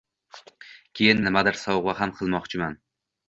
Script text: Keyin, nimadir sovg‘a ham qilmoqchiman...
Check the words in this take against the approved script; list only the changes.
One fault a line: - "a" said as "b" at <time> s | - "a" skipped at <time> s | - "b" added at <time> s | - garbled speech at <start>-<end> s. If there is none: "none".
none